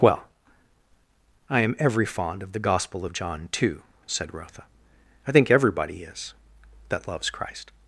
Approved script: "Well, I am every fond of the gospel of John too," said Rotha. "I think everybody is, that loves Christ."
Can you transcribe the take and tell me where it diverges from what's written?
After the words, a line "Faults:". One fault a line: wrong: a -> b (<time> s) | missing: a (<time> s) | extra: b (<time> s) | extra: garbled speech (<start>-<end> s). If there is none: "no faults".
"Well, I am every fond of the gospel of John too," said Rotha. "I think everybody is, that loves Christ."
Faults:
no faults